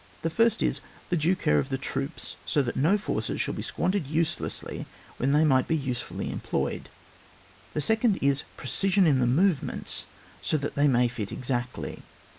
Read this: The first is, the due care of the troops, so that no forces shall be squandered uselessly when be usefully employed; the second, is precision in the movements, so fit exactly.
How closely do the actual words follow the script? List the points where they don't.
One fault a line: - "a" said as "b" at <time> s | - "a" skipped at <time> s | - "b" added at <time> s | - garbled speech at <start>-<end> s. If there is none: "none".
- "they might" added at 5.3 s
- "that they may" added at 10.6 s